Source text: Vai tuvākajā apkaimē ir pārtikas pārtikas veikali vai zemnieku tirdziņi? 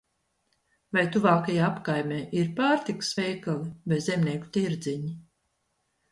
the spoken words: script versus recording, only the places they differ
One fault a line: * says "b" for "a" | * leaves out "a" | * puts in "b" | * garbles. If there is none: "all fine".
* leaves out "pārtikas"